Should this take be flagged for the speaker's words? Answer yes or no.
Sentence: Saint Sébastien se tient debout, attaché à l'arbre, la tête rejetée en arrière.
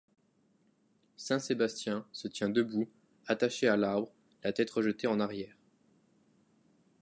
no